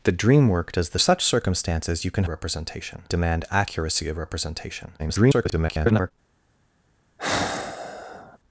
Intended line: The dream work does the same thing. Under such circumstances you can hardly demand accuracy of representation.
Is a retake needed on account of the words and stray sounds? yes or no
yes